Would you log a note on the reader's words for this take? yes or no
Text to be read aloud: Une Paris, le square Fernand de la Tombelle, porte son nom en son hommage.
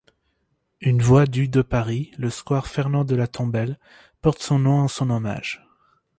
yes